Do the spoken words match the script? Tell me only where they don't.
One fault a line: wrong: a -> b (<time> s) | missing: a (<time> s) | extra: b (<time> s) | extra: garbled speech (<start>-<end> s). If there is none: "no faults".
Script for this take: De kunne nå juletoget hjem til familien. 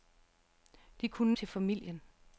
missing: nå juletoget hjem (1.3 s)